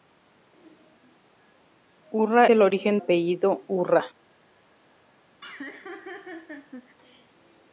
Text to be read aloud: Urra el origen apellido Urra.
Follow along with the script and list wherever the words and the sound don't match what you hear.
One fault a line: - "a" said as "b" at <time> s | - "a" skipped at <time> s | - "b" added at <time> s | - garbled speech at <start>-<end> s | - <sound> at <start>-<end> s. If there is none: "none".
- laugh at 5.4-7.0 s